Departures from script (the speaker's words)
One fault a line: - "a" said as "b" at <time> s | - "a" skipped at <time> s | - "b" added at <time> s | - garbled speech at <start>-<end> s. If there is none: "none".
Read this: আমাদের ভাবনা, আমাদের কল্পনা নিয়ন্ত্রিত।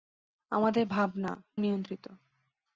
- "আমাদের কল্পনা" skipped at 1.3 s